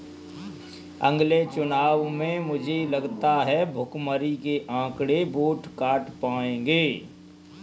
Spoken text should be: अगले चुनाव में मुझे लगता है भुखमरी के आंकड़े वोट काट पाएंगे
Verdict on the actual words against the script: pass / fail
pass